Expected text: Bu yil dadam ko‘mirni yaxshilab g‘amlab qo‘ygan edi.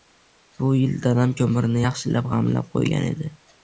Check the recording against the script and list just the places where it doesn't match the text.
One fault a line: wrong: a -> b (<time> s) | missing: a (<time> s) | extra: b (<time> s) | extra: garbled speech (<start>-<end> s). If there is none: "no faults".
no faults